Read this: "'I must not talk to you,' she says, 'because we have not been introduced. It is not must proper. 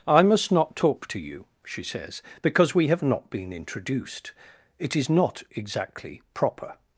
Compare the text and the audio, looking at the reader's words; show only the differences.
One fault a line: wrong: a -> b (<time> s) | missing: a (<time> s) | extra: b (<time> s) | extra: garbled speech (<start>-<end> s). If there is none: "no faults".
wrong: must -> exactly (5.5 s)